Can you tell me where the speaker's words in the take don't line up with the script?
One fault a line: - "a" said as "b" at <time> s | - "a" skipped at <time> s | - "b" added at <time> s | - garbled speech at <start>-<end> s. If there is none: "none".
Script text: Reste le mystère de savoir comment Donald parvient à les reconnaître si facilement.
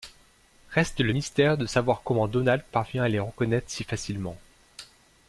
none